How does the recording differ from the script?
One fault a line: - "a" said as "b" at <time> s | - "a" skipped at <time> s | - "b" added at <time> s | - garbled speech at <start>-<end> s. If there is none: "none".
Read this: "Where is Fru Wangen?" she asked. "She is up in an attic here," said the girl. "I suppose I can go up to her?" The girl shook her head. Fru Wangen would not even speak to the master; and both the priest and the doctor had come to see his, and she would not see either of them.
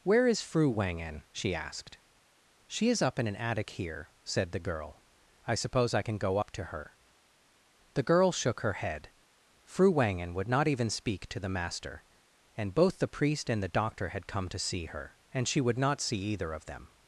- "his" said as "her" at 14.8 s